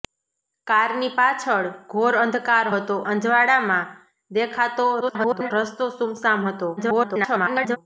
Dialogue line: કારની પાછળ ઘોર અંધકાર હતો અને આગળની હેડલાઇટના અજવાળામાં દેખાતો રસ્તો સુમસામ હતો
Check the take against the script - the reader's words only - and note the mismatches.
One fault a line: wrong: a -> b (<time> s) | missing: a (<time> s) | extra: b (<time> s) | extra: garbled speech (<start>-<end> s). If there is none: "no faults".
missing: અને આગળની હેડલાઇટના (3.0 s)
extra: garbled speech (5.0-5.5 s)
extra: garbled speech (6.8-7.8 s)